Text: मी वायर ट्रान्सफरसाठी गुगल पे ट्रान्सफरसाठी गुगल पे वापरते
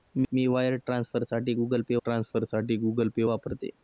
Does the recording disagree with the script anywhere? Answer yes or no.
no